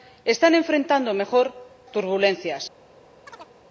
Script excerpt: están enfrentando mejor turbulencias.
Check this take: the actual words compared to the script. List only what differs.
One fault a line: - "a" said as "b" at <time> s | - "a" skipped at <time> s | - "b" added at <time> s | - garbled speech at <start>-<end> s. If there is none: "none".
none